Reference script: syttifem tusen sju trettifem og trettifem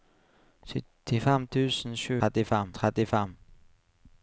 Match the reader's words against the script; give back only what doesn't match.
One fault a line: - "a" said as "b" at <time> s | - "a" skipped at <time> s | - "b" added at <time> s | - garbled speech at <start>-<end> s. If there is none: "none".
none